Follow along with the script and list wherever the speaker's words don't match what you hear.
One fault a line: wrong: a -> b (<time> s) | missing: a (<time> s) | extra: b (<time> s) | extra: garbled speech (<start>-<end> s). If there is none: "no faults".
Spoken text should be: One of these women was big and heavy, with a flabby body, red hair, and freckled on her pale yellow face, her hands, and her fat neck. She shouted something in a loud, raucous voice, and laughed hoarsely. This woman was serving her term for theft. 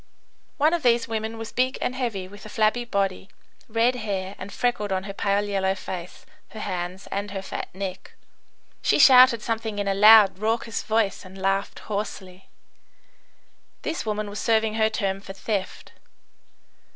no faults